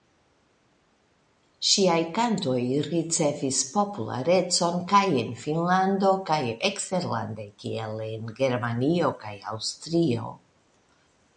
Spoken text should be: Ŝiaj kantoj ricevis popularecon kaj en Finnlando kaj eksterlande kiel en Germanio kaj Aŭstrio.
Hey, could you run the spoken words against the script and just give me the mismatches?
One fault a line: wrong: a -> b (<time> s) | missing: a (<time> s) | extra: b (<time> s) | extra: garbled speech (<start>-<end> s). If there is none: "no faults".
no faults